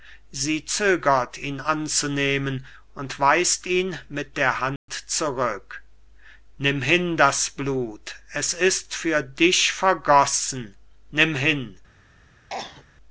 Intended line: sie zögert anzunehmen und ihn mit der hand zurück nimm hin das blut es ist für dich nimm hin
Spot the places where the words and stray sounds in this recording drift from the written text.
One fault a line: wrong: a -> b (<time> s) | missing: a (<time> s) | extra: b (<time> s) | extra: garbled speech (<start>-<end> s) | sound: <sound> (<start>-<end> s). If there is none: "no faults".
extra: ihn (1.4 s)
extra: weist (3.2 s)
sound: dropout (4.8-4.9 s)
extra: vergossen (9.7 s)
sound: cough (12.5-12.9 s)